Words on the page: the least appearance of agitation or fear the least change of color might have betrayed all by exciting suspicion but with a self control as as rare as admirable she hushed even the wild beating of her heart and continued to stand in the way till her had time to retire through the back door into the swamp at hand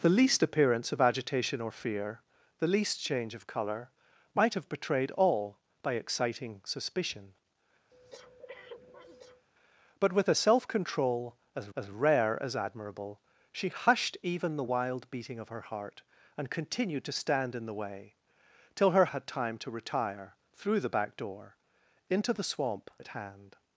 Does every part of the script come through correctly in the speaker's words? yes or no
yes